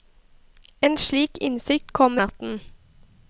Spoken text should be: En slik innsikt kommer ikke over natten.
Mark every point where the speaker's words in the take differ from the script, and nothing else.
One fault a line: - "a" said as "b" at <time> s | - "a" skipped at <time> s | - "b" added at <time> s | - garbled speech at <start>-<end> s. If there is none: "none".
- "ikke over" skipped at 2.2 s